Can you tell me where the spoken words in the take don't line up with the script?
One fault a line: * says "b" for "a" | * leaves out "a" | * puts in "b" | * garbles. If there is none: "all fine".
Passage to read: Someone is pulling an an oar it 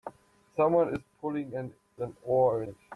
all fine